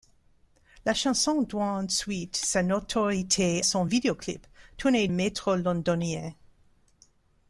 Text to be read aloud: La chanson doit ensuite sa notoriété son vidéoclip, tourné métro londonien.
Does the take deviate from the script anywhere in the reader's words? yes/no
no